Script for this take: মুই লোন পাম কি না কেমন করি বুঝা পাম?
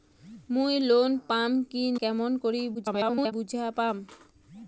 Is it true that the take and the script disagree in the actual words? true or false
true